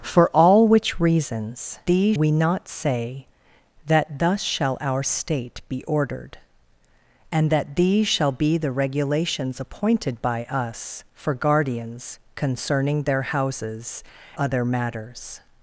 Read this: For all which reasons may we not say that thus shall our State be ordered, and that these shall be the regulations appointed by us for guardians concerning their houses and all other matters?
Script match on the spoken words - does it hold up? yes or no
no